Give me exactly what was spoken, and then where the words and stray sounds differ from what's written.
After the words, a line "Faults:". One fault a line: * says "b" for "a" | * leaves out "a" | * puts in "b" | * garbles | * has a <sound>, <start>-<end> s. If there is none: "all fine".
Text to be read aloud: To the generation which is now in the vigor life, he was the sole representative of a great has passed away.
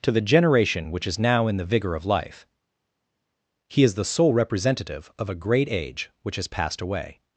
To the generation which is now in the vigor of life, he is the sole representative of a great age which has passed away.
Faults:
* puts in "of"
* says "is" for "was"
* puts in "age which"